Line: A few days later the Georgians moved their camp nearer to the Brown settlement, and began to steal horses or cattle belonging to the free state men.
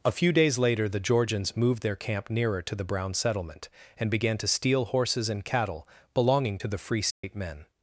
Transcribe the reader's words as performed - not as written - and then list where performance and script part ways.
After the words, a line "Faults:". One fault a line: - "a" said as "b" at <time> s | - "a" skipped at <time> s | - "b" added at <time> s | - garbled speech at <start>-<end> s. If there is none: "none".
A few days later the Georgians moved their camp nearer to the Brown settlement, and began to steal horses and cattle belonging to the free state men.
Faults:
- "or" said as "and" at 5.3 s